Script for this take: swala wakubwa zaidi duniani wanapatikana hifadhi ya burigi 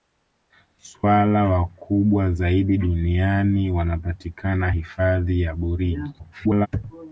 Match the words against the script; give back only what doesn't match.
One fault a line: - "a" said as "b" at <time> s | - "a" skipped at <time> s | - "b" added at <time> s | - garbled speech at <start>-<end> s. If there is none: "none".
- garbled speech at 6.2-6.7 s